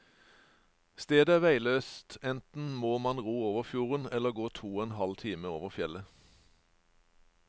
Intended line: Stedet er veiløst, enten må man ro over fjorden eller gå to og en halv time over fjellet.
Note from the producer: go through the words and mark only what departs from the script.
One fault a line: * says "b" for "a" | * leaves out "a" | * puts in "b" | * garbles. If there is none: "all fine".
all fine